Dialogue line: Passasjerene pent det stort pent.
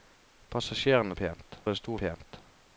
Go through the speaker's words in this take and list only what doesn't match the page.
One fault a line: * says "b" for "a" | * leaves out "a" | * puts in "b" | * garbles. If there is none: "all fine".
all fine